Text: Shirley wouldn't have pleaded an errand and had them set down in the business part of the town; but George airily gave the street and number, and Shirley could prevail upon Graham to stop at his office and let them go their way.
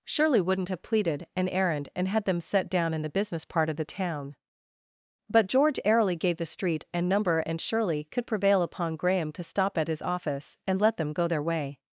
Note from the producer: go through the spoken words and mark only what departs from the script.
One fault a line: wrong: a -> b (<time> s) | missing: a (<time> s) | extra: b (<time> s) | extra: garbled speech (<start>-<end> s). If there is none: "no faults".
no faults